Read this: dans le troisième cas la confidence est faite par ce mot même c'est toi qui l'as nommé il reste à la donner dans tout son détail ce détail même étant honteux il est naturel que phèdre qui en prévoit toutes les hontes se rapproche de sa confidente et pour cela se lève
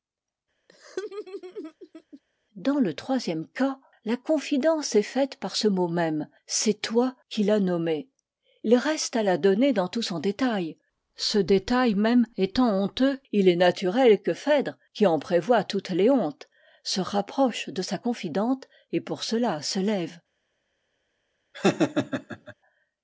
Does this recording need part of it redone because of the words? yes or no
no